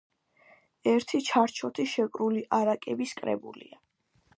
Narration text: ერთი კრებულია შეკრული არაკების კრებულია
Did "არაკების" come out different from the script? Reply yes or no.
no